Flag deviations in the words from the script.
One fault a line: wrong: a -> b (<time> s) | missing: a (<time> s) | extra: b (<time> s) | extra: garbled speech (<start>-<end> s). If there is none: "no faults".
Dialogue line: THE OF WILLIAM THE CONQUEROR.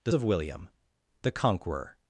no faults